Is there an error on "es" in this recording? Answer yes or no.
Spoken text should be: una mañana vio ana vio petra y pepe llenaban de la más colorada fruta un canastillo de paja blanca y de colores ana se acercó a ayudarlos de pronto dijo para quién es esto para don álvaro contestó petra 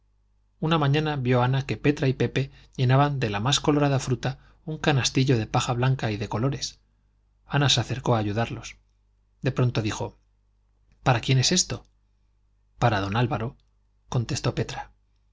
no